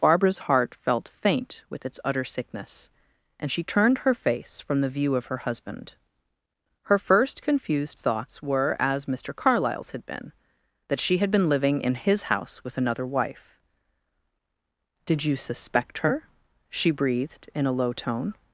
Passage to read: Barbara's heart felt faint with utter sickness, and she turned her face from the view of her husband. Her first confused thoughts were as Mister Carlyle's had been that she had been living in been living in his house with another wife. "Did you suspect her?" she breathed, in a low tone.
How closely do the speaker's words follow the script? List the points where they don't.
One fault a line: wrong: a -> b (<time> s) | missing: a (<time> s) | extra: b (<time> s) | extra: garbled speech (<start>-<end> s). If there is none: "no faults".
extra: its (1.9 s)
missing: been living in (11.9 s)